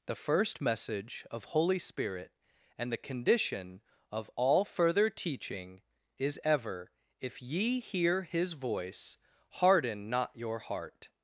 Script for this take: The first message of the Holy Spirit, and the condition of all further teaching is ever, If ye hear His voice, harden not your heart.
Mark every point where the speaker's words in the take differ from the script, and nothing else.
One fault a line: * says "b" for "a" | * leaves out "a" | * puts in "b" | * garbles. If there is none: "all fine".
* leaves out "the"